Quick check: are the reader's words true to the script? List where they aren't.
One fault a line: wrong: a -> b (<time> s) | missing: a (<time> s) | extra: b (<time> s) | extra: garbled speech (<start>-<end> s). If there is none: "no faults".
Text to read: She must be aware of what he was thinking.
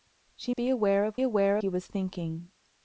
missing: must (0.6 s)
wrong: what -> aware (1.2 s)